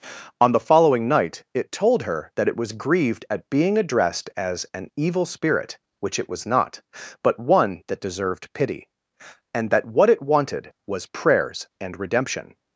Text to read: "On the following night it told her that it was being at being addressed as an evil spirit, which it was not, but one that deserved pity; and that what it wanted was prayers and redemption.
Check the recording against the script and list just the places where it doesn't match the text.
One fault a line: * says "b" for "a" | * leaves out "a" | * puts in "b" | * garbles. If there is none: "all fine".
* says "grieved" for "being"